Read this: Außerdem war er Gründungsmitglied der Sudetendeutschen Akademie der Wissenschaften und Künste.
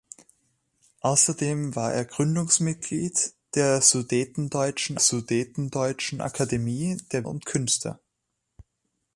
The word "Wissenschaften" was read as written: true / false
false